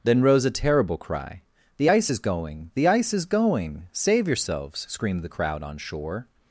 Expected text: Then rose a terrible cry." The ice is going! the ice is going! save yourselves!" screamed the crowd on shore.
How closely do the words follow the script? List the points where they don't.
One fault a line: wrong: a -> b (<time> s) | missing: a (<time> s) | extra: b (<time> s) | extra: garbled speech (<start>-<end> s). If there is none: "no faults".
no faults